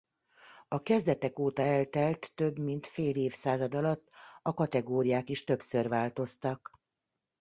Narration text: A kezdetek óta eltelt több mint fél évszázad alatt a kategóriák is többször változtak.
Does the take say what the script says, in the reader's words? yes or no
yes